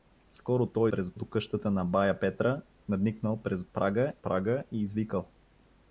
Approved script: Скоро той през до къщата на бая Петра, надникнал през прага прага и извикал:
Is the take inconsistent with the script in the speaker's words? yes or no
no